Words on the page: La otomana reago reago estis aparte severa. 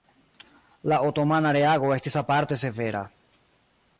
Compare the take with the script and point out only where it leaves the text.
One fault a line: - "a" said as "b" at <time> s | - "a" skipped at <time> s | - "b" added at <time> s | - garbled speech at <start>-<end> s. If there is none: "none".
- "reago" skipped at 1.9 s